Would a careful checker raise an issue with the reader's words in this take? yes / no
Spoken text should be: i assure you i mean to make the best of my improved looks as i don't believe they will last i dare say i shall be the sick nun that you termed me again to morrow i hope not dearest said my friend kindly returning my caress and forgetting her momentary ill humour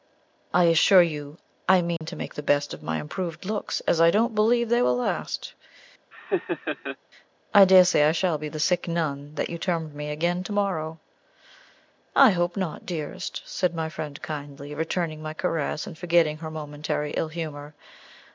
no